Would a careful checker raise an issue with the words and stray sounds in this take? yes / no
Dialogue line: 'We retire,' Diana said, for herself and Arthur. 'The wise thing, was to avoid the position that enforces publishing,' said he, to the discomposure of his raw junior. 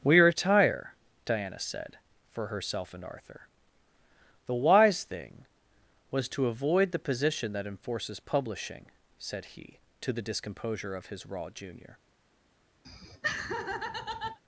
yes